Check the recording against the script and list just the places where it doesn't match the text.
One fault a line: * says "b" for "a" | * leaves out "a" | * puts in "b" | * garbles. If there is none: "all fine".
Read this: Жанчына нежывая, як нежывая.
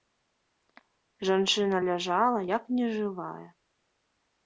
* says "ляжала" for "нежывая"